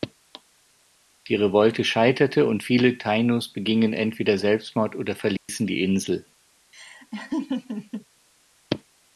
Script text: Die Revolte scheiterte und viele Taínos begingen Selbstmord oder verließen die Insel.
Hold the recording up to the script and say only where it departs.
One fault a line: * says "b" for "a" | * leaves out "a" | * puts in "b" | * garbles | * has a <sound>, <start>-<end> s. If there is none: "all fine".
* puts in "entweder"
* has a dropout, 5.4-5.5 s
* has a laugh, 6.7-8.1 s